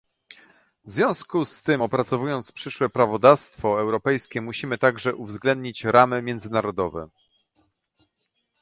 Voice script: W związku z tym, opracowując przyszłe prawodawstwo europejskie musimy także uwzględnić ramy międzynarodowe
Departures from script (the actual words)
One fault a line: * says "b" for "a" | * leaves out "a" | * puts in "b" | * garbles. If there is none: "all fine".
all fine